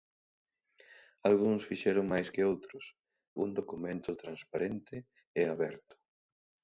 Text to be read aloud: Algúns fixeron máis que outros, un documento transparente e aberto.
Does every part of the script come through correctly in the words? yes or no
yes